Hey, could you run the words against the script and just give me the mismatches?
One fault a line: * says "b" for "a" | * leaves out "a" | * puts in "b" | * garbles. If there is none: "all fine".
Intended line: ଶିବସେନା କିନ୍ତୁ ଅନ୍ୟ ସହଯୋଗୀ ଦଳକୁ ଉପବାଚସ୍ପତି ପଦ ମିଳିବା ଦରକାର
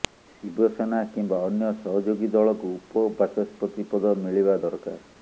* says "କିମ୍ବା" for "କିନ୍ତୁ"